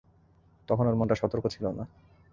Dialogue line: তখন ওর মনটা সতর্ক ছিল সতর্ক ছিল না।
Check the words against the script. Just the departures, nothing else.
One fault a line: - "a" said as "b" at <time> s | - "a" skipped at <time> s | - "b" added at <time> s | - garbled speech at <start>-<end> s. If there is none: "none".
- "সতর্ক ছিল" skipped at 1.6 s